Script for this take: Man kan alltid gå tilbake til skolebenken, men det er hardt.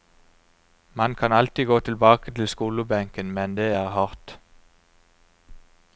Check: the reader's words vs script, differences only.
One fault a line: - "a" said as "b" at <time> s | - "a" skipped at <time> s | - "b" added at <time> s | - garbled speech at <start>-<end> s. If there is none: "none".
none